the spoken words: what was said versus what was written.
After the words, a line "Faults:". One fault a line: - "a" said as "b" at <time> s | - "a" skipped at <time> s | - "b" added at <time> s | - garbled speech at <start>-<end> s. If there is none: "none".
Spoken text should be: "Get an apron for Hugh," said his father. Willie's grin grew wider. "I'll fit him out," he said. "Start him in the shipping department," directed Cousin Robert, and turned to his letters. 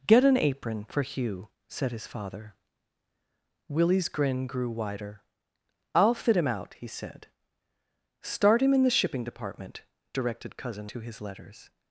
"Get an apron for Hugh," said his father. Willie's grin grew wider. "I'll fit him out," he said. "Start him in the shipping department," directed Cousin To his letters.
Faults:
- "Robert and turned" skipped at 10.9 s